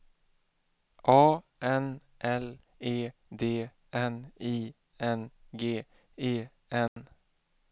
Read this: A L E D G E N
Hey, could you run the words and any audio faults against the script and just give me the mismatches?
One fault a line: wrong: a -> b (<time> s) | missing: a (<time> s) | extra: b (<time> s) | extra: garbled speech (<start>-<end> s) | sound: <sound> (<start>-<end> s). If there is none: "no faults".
extra: N (1.6 s)
extra: N I N (3.9 s)
sound: dropout (6.9-7.0 s)